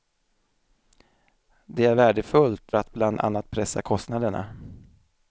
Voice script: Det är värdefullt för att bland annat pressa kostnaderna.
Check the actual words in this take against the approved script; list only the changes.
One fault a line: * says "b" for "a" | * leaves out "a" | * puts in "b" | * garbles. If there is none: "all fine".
* leaves out "för"